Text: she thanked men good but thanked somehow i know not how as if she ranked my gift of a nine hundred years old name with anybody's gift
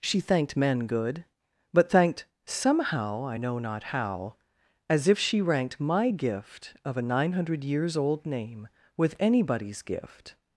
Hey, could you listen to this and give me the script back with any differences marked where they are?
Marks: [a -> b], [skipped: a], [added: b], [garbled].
she thanked men good but thanked somehow i know not how as if she ranked my gift of a nine hundred years old name with anybody's gift